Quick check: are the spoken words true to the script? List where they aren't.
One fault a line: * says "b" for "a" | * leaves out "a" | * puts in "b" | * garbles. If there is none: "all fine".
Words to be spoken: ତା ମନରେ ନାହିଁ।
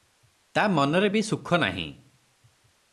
* puts in "ବି ସୁଖ"